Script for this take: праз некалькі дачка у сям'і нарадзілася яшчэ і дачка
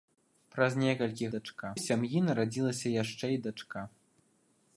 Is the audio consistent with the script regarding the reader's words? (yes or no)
yes